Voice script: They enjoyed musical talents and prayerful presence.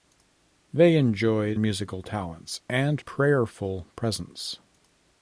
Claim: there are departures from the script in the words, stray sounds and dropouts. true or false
false